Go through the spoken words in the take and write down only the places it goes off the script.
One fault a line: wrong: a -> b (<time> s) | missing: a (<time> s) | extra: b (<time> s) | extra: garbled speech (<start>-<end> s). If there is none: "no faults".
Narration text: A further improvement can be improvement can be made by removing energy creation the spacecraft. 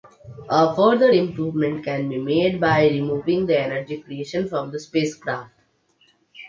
missing: improvement can be (2.2 s)
extra: the (3.5 s)
extra: from (4.5 s)